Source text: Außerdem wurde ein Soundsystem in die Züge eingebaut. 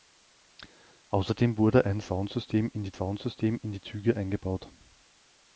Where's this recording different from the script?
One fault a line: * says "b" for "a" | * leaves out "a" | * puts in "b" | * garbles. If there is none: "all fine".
* puts in "Soundsystem in die"